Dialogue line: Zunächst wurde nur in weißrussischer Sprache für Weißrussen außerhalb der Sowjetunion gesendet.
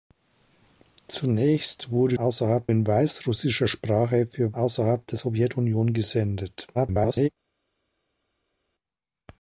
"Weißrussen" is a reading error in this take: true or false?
true